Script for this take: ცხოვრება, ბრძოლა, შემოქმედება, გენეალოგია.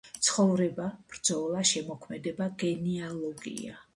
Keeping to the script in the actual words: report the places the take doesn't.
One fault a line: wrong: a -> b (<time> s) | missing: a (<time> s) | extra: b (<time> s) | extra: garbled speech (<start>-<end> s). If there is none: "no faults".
no faults